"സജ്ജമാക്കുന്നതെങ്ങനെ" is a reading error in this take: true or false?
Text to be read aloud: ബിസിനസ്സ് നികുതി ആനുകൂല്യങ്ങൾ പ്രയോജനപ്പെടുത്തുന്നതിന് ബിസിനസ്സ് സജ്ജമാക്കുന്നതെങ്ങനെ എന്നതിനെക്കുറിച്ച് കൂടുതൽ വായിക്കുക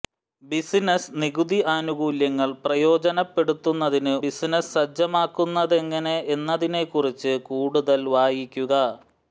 false